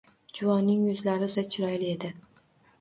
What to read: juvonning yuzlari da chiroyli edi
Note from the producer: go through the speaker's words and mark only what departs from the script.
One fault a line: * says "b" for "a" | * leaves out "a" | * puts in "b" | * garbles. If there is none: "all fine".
all fine